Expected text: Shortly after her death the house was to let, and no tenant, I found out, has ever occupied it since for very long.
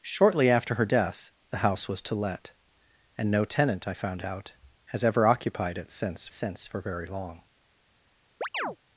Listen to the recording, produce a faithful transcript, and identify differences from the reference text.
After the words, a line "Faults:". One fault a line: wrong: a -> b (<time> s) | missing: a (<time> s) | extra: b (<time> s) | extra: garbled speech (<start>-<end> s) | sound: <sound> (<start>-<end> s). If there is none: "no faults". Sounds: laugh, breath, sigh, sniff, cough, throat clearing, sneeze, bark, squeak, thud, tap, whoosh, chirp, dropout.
Shortly after her death the house was to let, and no tenant, I found out, has ever occupied it since since for very long.
Faults:
extra: since (6.3 s)
sound: chirp (8.4-8.8 s)